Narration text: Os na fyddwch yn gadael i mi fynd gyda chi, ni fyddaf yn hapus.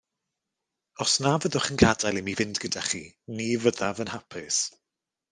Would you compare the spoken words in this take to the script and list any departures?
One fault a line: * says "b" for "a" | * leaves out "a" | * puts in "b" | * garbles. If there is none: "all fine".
all fine